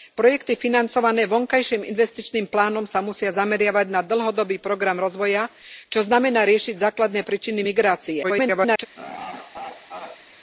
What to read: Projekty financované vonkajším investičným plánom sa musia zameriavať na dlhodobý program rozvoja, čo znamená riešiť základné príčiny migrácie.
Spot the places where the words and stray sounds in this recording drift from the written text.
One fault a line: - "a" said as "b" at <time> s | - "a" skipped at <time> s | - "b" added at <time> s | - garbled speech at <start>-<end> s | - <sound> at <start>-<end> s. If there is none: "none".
- garbled speech at 8.2-8.9 s
- laugh at 9.0-10.2 s